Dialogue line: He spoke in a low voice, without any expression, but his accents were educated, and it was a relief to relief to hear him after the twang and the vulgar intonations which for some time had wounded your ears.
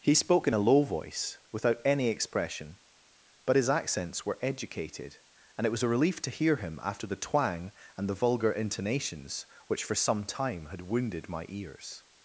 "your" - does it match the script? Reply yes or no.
no